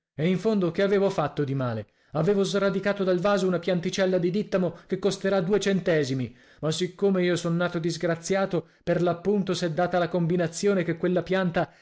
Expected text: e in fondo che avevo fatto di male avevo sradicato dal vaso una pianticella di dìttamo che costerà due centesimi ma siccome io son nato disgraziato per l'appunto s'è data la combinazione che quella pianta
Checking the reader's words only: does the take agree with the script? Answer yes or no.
yes